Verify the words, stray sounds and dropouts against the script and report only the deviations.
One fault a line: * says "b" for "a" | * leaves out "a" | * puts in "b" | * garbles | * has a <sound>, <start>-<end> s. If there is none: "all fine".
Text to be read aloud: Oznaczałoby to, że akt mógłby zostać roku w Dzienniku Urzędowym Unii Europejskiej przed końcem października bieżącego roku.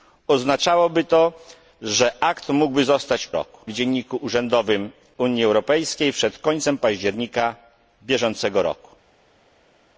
all fine